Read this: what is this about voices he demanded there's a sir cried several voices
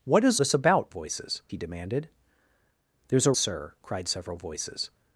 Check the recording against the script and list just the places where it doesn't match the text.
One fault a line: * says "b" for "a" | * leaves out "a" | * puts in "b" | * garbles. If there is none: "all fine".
all fine